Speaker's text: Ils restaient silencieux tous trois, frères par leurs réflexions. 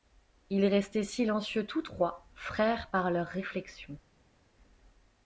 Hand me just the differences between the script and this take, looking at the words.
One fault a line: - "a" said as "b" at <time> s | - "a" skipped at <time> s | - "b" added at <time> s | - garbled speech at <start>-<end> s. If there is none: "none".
none